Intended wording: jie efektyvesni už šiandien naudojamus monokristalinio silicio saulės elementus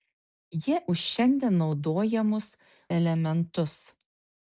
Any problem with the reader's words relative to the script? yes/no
yes